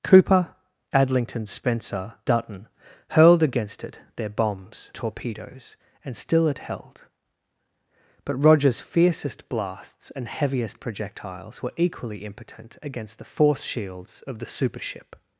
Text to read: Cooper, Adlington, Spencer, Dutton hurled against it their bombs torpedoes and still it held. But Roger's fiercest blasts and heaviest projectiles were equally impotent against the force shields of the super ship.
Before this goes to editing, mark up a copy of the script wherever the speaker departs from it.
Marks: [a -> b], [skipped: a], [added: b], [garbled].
Cooper, Adlington, Spencer, Dutton hurled against it their bombs torpedoes and still it held. But Roger's fiercest blasts and heaviest projectiles were equally impotent against the force shields of the super ship.